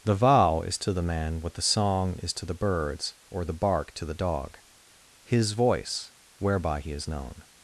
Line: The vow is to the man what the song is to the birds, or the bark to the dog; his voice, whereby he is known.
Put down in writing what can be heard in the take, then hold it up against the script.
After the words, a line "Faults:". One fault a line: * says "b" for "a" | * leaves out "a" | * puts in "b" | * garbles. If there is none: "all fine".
The vow is to the man what the song is to the birds, or the bark to the dog; his voice, whereby he is known.
Faults:
all fine